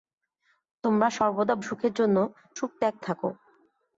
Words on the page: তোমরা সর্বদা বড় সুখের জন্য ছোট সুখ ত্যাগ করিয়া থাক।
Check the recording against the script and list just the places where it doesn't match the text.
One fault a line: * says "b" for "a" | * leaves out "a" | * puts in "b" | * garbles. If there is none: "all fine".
* leaves out "বড়"
* leaves out "ছোট"
* leaves out "করিয়া"